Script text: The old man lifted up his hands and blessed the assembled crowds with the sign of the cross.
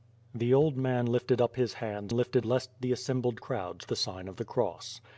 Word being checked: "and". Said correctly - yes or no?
no